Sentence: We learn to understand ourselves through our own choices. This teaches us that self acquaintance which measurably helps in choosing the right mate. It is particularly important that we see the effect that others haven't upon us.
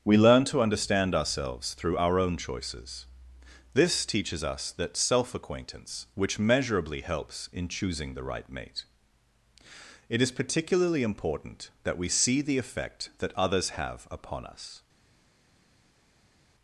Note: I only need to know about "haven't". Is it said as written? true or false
false